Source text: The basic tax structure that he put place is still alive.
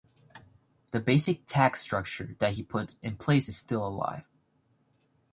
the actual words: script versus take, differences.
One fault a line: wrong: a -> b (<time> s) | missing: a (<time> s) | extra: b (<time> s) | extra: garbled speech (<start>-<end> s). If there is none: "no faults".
extra: in (3.0 s)